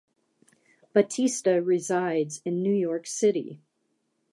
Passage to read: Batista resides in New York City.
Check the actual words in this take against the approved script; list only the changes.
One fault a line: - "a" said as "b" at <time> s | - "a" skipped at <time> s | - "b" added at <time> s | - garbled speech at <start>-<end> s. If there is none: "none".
none